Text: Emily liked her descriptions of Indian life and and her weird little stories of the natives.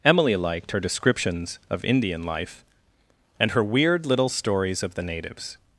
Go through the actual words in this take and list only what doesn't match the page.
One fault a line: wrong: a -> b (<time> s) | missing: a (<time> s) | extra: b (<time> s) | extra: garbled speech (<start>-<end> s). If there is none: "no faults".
missing: and (3.5 s)